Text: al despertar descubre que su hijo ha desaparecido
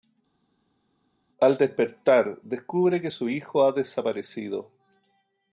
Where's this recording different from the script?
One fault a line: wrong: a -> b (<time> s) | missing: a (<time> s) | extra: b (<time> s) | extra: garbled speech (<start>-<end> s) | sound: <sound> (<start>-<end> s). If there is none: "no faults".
no faults